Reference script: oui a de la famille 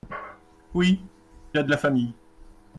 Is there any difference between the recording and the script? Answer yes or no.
no